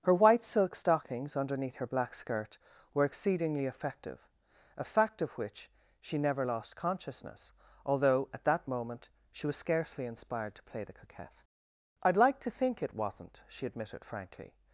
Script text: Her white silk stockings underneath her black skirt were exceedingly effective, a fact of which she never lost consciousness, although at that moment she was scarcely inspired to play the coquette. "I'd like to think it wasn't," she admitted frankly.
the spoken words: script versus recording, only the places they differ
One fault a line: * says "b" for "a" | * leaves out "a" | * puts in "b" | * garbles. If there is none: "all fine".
all fine